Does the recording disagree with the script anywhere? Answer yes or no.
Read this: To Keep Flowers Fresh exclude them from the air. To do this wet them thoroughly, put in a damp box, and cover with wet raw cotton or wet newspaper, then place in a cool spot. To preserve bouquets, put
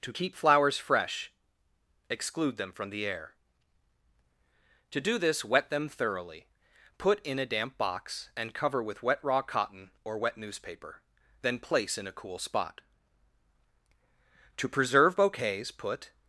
no